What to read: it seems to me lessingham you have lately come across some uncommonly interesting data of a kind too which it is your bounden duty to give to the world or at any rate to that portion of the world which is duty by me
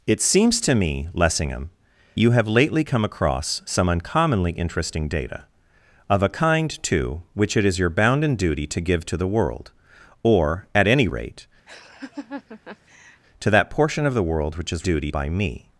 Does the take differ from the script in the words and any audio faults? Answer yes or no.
yes